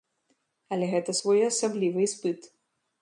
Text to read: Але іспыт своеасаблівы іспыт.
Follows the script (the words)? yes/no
no